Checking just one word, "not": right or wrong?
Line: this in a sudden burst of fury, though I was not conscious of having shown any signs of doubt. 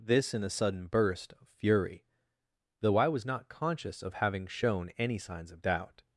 right